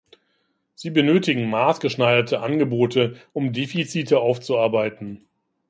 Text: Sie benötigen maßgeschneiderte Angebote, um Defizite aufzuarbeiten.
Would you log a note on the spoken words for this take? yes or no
no